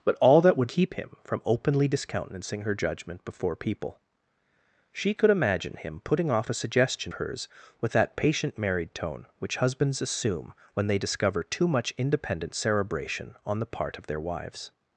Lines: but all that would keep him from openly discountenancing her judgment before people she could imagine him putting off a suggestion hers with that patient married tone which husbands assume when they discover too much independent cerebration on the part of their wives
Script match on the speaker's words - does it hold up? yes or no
yes